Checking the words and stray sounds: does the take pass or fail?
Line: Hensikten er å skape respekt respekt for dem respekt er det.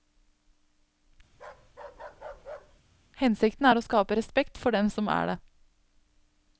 fail